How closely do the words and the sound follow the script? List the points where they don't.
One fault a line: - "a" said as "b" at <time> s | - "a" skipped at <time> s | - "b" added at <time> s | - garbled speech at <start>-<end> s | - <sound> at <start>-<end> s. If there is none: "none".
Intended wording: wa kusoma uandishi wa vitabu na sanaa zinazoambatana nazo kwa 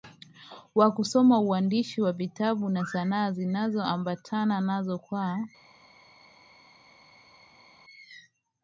none